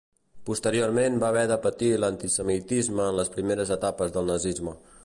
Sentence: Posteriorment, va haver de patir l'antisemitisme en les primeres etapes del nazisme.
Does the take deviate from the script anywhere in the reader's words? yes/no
no